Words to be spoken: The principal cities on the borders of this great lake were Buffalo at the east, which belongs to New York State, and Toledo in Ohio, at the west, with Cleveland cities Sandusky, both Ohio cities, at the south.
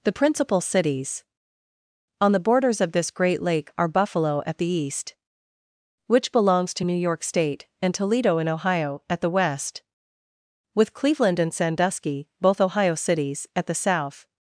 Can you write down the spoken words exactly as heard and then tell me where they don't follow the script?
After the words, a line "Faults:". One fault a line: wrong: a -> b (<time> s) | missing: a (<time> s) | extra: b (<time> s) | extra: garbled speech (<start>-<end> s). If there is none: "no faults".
The principal cities on the borders of this great lake are Buffalo at the east, which belongs to New York State, and Toledo in Ohio, at the west, with Cleveland and Sandusky, both Ohio cities, at the south.
Faults:
wrong: were -> are (3.8 s)
wrong: cities -> and (11.4 s)